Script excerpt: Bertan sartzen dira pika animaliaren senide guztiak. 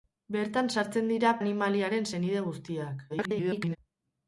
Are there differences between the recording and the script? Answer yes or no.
yes